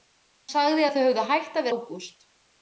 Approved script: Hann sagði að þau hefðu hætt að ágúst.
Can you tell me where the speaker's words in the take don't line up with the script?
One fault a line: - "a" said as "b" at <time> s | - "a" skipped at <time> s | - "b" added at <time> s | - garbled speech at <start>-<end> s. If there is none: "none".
none